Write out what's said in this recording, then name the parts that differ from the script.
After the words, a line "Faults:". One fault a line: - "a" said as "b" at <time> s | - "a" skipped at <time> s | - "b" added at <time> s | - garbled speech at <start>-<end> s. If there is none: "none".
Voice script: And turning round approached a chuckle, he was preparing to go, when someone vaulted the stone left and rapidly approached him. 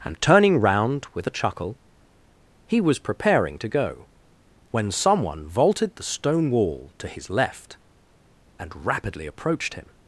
And turning round with a chuckle, he was preparing to go, when someone vaulted the stone wall to his left and rapidly approached him.
Faults:
- "approached" said as "with" at 1.1 s
- "wall to his" added at 6.5 s